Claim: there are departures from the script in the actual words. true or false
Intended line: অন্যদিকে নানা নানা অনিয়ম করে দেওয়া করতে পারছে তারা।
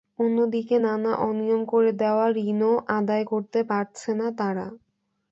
true